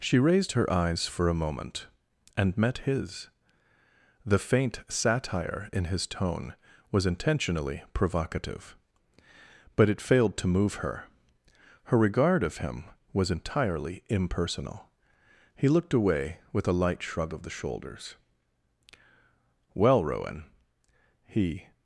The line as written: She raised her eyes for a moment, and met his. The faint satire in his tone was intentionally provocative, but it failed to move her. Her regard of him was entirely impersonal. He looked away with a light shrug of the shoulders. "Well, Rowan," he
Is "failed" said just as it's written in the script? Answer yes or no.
yes